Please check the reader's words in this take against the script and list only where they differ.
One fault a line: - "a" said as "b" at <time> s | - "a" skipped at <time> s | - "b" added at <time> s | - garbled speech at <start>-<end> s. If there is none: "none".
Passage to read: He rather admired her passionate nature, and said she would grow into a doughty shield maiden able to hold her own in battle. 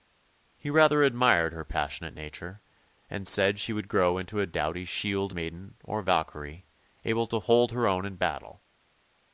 - "or Valkyrie" added at 5.8 s